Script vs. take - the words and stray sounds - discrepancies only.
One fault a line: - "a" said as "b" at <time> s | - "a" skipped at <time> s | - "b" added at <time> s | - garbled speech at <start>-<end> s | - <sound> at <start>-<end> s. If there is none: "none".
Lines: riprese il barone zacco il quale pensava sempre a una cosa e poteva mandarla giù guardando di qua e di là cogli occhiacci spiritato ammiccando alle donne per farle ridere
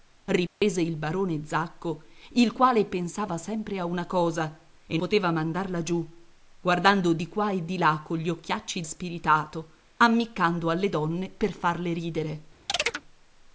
- dropout at 0.5-0.6 s
- chirp at 12.7-13.0 s